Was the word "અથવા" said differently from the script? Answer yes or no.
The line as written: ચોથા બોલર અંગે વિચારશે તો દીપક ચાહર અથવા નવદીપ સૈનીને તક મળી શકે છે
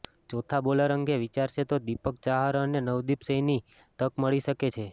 yes